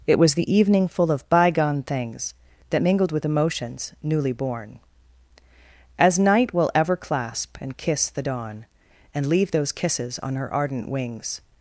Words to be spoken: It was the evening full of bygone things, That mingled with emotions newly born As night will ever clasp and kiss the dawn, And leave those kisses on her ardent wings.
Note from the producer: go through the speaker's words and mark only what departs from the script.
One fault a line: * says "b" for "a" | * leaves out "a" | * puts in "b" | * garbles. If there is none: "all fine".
all fine